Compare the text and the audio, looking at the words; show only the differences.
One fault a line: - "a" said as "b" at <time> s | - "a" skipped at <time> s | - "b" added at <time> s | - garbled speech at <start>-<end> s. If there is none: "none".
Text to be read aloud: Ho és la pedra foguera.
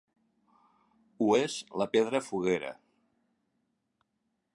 none